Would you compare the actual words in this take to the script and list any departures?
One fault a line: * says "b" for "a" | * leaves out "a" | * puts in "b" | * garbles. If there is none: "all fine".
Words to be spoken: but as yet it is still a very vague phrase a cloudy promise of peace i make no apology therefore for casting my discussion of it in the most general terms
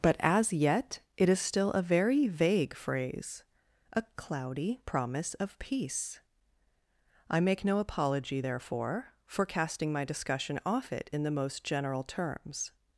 * says "off" for "of"